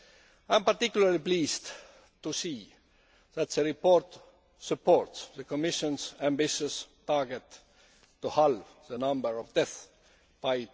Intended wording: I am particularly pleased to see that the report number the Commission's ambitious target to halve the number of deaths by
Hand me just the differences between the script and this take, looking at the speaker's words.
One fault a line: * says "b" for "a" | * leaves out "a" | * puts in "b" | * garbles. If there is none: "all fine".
* says "supports" for "number"